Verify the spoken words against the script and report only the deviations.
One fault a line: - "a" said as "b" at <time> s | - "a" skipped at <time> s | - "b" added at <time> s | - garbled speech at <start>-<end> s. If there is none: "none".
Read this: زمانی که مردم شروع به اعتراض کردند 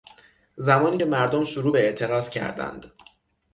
none